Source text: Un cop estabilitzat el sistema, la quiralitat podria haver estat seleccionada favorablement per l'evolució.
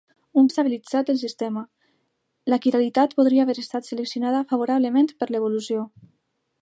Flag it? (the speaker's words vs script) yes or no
yes